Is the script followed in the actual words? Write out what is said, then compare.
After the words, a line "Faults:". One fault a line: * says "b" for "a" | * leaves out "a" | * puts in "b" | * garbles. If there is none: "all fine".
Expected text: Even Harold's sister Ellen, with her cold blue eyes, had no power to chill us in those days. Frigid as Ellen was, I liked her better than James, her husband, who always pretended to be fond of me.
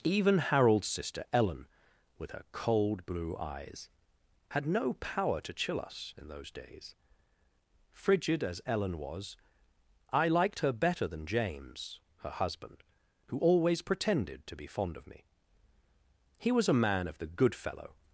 Even Harold's sister Ellen, with her cold blue eyes, had no power to chill us in those days. Frigid as Ellen was, I liked her better than James, her husband, who always pretended to be fond of me. He was a man of the 'good fellow
Faults:
* puts in "He was a man of the good fellow"